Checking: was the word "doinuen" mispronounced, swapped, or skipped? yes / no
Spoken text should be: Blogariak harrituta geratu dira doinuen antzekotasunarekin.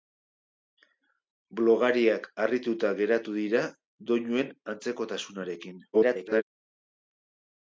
no